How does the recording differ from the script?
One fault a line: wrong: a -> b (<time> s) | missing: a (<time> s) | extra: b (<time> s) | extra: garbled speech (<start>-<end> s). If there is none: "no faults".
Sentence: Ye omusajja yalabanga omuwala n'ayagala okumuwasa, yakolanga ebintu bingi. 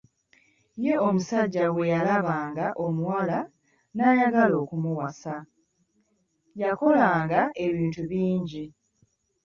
extra: bwe (1.7 s)